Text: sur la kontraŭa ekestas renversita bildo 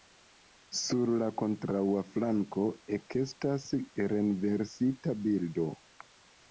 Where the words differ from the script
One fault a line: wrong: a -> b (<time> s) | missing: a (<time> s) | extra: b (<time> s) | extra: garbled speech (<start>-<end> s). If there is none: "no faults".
extra: flanko (2.1 s)